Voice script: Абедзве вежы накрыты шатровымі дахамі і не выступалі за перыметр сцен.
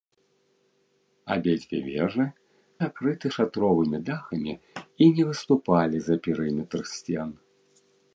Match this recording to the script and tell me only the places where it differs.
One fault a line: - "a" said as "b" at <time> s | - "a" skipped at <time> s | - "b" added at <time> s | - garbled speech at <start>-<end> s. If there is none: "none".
none